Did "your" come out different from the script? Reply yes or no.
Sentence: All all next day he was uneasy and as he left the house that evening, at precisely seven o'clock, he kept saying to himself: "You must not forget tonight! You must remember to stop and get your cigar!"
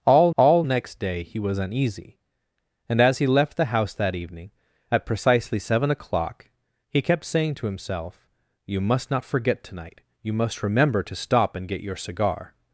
no